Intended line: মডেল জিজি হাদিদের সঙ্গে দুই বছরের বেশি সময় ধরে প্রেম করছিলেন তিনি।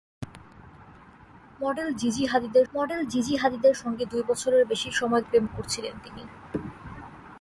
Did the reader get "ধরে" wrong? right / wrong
wrong